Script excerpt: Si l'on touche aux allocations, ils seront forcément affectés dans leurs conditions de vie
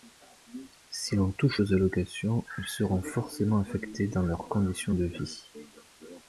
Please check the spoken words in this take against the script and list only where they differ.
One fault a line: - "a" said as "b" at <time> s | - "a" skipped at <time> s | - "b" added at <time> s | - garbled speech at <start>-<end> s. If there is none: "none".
none